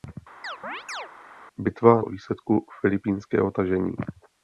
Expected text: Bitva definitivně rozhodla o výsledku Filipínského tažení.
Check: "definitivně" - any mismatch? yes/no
yes